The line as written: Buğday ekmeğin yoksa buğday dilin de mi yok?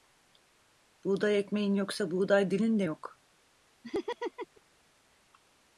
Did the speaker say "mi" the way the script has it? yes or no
no